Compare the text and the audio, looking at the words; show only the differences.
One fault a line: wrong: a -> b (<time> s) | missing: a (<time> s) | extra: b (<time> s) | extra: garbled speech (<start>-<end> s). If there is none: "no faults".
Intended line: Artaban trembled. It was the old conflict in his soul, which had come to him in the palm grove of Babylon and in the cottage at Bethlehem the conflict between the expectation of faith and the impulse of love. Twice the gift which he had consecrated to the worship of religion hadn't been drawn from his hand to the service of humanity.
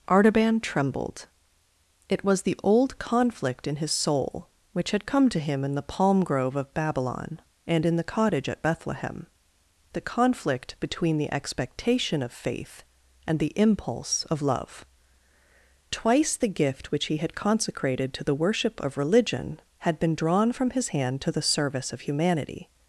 wrong: hadn't -> had (19.8 s)